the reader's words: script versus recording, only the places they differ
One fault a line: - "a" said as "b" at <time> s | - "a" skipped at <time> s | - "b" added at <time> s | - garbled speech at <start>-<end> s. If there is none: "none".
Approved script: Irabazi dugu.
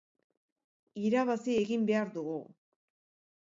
- "egin behar" added at 1.6 s